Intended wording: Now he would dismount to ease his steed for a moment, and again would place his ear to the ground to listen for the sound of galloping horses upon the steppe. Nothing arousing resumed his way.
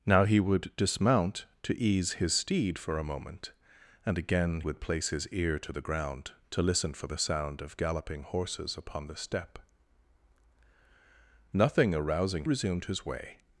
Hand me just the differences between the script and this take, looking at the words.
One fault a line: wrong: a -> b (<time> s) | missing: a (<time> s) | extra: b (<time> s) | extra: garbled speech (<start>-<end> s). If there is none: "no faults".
no faults